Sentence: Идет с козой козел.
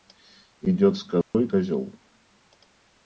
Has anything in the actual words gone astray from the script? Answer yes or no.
no